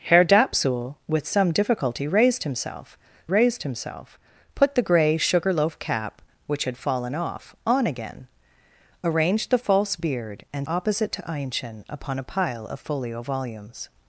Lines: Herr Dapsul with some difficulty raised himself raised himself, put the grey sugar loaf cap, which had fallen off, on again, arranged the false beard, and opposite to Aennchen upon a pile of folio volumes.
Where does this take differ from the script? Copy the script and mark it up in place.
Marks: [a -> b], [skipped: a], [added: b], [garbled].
Herr Dapsul with some difficulty raised himself raised himself, put the grey sugar loaf cap, which had fallen off, on again, arranged the false beard, and opposite to Aennchen upon a pile of folio volumes.